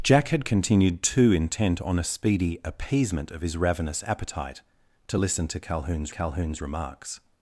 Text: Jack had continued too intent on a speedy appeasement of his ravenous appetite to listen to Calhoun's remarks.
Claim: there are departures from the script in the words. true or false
true